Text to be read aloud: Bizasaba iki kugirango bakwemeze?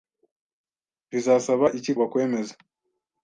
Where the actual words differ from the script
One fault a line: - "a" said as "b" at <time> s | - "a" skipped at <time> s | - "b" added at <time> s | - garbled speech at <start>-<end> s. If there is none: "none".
- "kugirango" skipped at 1.9 s